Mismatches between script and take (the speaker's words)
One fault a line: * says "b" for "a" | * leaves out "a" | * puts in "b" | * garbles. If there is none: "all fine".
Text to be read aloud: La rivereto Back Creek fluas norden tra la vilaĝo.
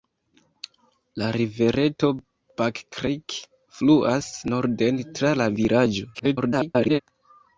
* garbles